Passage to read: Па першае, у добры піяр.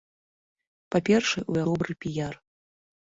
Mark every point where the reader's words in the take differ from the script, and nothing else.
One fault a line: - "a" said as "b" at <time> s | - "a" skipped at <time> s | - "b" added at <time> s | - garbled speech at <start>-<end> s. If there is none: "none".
none